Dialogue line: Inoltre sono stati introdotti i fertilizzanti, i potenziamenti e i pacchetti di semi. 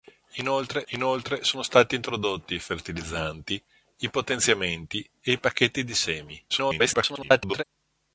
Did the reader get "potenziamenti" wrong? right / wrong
right